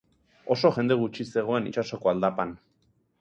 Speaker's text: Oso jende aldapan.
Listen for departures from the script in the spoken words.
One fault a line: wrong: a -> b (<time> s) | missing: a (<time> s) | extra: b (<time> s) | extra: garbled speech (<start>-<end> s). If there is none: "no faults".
extra: gutxi zegoen itsasoko (1.0 s)